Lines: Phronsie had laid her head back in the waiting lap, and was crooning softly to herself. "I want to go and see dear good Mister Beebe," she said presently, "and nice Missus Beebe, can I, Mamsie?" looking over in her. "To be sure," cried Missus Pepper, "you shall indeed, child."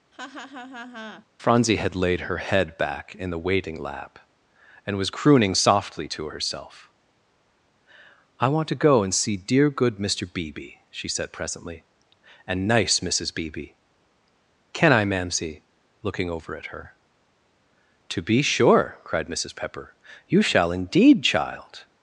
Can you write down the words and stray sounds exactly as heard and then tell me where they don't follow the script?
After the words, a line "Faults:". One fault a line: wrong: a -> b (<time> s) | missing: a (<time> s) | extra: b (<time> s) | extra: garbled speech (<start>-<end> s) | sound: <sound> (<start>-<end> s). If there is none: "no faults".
Phronsie had laid her head back in the waiting lap, and was crooning softly to herself. "I want to go and see dear good Mister Beebe," she said presently, "and nice Missus Beebe, can I, Mamsie?" looking over at her. "To be sure," cried Missus Pepper, "you shall indeed, child."
Faults:
sound: laugh (0.1-1.3 s)
wrong: in -> at (16.6 s)